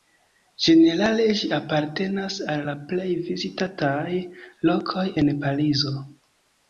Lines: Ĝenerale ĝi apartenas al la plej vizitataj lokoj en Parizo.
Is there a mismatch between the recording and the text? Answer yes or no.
no